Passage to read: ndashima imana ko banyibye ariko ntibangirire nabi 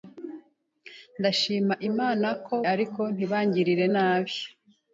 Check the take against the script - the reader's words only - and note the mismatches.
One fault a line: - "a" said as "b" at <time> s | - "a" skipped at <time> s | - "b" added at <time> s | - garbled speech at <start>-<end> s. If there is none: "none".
- "banyibye" skipped at 2.5 s